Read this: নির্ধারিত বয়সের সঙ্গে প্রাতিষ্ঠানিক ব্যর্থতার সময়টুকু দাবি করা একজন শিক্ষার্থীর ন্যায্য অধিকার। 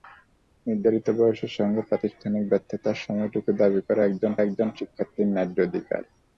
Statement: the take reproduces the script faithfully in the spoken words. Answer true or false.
false